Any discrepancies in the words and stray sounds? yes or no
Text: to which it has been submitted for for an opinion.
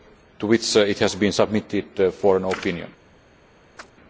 yes